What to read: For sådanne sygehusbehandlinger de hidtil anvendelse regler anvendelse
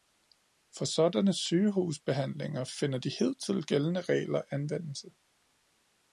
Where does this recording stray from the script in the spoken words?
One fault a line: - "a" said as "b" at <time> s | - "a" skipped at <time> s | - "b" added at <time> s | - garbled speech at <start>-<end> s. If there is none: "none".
- "finder" added at 2.6 s
- "anvendelse" said as "gældende" at 3.7 s